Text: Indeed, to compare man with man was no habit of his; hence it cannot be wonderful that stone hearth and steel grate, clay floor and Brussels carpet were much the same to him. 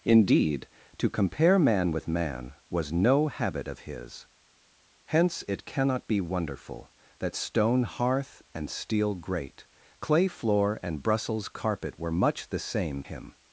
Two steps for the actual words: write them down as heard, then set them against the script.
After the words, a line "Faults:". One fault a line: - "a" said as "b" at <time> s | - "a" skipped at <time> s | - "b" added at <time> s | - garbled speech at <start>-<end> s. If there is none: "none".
Indeed, to compare man with man was no habit of his; hence it cannot be wonderful that stone hearth and steel grate, clay floor and Brussels carpet were much the same him.
Faults:
- "to" skipped at 13.0 s